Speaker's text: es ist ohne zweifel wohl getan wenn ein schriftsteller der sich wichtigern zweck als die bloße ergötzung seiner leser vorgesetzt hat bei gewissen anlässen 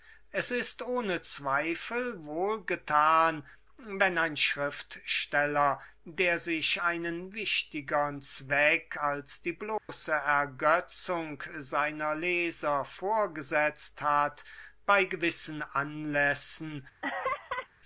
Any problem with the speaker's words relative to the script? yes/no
yes